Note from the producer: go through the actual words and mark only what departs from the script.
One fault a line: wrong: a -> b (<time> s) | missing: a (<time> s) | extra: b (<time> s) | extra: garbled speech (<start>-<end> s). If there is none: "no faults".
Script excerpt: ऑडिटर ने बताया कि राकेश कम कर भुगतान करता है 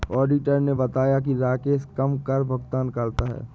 no faults